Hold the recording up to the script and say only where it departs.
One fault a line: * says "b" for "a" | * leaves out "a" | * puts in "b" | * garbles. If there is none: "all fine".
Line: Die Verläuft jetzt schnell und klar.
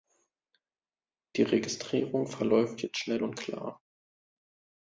* puts in "Registrierung"